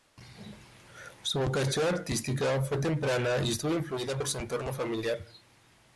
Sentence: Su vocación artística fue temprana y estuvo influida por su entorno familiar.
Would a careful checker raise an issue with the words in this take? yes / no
no